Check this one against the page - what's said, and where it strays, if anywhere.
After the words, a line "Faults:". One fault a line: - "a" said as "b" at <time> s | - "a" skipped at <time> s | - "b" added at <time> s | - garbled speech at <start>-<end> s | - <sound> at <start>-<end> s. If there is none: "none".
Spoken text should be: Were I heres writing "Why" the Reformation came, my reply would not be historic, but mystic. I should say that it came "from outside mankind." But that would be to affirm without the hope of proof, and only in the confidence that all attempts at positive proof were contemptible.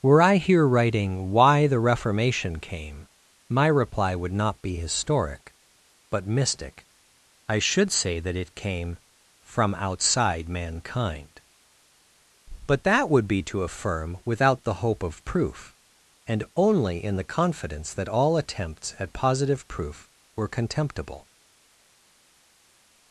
Were I here writing "Why" the Reformation came, my reply would not be historic, but mystic. I should say that it came "from outside mankind." But that would be to affirm without the hope of proof, and only in the confidence that all attempts at positive proof were contemptible.
Faults:
- "heres" said as "here" at 0.4 s